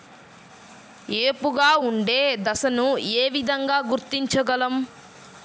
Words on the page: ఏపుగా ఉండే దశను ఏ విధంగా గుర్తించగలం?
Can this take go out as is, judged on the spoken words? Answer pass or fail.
pass